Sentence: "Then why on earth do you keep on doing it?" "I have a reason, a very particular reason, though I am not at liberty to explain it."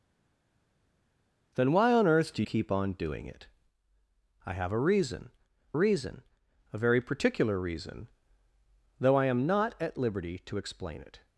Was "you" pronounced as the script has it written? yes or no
no